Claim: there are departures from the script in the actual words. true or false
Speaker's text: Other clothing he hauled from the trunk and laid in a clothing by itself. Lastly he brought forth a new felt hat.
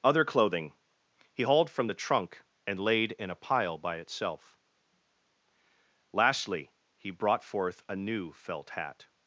true